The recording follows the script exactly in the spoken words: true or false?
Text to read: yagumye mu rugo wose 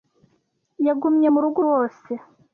true